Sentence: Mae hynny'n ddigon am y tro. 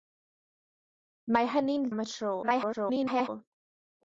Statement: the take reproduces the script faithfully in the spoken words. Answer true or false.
false